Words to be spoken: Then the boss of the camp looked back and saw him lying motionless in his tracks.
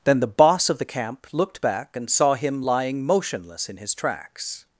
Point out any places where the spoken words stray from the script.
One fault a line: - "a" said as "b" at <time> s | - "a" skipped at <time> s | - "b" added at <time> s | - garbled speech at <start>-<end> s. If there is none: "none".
none